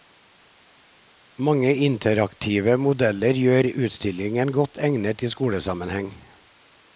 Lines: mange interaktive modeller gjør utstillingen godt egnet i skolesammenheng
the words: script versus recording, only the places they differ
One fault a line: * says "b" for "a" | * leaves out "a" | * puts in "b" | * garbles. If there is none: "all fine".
all fine